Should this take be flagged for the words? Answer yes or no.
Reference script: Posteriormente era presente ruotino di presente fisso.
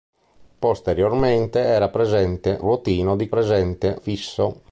no